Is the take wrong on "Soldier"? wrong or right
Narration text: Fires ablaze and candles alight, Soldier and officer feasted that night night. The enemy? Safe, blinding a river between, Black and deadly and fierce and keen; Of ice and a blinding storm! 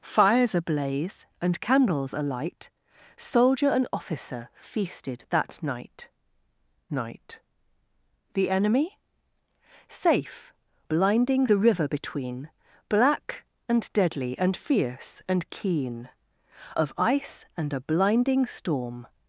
right